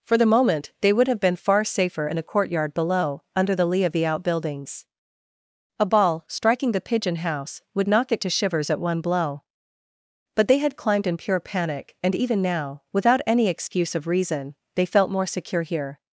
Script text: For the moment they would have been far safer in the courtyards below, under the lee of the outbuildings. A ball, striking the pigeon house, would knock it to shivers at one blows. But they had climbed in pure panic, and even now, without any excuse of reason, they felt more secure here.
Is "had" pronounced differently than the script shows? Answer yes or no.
no